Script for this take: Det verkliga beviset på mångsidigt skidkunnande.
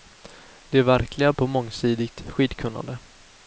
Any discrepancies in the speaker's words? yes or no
yes